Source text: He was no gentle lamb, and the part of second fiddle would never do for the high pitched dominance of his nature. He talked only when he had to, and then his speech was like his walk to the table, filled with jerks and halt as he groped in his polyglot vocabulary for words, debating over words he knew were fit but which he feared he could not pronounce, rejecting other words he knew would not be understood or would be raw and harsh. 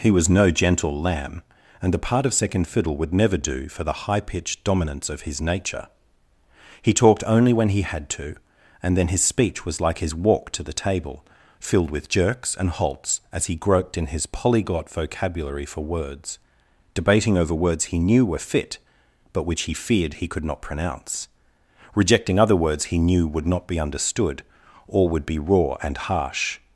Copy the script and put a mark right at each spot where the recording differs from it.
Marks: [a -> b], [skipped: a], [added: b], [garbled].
He was no gentle lamb, and the part of second fiddle would never do for the high pitched dominance of his nature. He talked only when he had to, and then his speech was like his walk to the table, filled with jerks and [halt -> halts] as he groped in his polyglot vocabulary for words, debating over words he knew were fit but which he feared he could not pronounce, rejecting other words he knew would not be understood or would be raw and harsh.